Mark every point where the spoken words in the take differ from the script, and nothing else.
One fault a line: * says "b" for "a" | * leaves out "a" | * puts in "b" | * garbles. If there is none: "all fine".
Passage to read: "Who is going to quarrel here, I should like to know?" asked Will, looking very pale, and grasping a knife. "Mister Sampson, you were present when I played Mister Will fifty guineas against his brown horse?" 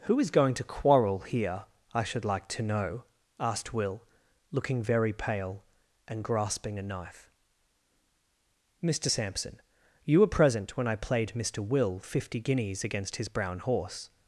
all fine